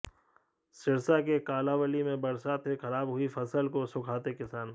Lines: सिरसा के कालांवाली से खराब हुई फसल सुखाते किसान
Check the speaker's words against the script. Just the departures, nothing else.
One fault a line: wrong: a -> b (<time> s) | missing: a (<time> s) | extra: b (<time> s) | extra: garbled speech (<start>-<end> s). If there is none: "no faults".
extra: में बरसात (2.0 s)
extra: को (3.7 s)